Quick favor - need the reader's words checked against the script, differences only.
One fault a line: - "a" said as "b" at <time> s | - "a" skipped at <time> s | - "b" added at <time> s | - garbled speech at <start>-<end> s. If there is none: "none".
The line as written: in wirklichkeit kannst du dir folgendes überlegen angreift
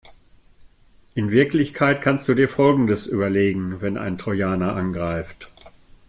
- "wenn ein trojaner" added at 3.8 s